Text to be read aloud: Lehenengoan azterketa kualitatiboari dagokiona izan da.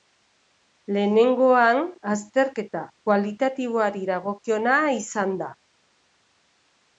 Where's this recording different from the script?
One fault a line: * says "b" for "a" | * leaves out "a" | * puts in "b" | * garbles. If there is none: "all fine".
all fine